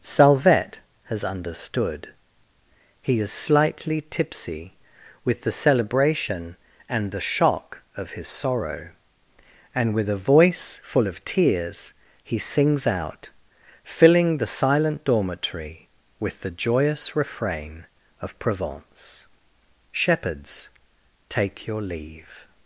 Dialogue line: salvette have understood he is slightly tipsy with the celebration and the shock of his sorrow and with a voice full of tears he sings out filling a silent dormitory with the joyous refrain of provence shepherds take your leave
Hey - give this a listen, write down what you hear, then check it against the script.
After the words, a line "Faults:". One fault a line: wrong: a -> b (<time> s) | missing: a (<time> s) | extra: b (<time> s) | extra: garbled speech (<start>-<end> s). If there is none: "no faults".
salvette has understood he is slightly tipsy with the celebration and the shock of his sorrow and with a voice full of tears he sings out filling the silent dormitory with the joyous refrain of provence shepherds take your leave
Faults:
wrong: have -> has (1.0 s)
wrong: a -> the (14.4 s)